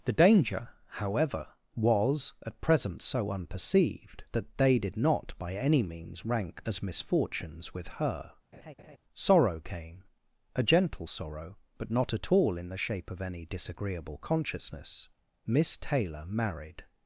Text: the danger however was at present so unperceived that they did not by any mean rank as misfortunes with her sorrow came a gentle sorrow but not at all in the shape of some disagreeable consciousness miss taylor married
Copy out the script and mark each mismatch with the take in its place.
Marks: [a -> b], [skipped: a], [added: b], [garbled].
the danger however was at present so unperceived that they did not by any [mean -> means] rank as misfortunes with her sorrow came a gentle sorrow but not at all in the shape of [some -> any] disagreeable consciousness miss taylor married